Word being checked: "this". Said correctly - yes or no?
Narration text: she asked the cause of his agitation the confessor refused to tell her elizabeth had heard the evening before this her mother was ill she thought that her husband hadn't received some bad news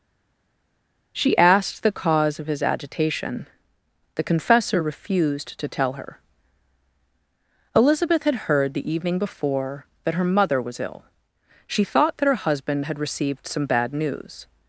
no